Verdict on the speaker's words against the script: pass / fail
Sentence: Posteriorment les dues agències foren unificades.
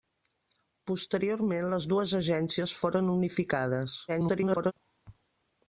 fail